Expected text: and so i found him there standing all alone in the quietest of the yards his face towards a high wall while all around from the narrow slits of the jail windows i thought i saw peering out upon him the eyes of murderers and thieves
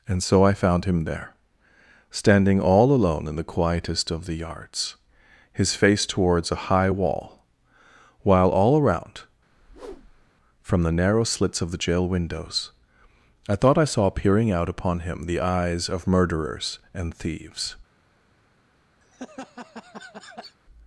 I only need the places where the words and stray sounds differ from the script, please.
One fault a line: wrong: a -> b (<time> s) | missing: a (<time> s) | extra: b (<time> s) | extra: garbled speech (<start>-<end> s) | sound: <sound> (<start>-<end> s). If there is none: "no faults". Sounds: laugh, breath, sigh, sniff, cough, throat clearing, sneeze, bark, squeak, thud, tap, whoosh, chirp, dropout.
sound: whoosh (9.5-10.3 s)
sound: laugh (19.0-20.6 s)